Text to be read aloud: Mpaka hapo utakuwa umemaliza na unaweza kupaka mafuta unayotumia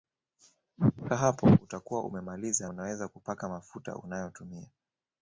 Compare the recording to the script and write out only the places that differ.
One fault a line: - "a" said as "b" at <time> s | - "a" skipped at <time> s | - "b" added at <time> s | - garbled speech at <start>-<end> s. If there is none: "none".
- "na" skipped at 2.7 s